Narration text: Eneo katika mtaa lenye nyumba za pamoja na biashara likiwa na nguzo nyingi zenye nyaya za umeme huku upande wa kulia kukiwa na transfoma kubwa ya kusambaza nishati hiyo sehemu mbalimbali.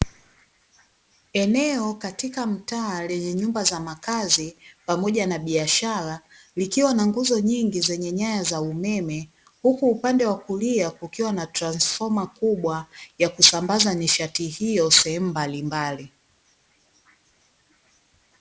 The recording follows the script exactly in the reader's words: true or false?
false